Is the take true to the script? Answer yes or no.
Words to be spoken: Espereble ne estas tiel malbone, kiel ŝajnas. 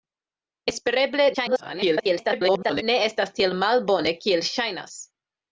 no